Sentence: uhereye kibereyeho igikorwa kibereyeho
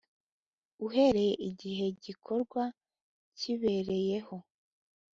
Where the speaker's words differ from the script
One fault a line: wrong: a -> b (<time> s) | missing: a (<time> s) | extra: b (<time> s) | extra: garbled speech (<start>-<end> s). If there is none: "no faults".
wrong: kibereyeho -> igihe (1.5 s)